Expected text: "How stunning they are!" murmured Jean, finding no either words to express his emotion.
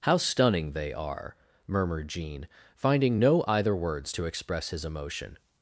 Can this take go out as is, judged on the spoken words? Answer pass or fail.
pass